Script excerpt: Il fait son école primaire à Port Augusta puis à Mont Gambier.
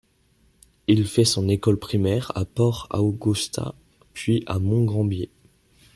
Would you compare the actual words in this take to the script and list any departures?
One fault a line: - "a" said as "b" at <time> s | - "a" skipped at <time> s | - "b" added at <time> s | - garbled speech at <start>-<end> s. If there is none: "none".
none